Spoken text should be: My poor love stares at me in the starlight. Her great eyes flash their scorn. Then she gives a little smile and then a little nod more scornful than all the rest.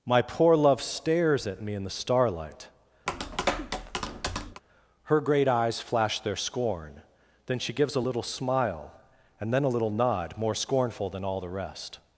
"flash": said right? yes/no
yes